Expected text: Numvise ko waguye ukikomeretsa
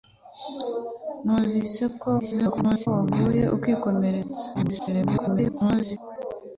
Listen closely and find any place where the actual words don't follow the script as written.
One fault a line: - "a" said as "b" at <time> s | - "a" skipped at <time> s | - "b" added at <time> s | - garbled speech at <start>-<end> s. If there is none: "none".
- garbled speech at 2.2-2.9 s
- garbled speech at 4.5-6.0 s